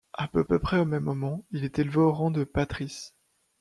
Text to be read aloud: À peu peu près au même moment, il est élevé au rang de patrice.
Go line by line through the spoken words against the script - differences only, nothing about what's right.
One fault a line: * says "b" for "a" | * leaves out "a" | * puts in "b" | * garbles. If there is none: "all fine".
all fine